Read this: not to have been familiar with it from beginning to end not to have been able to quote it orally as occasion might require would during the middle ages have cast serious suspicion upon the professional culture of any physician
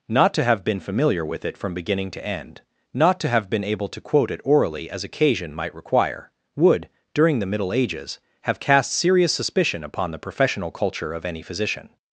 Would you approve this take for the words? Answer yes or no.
yes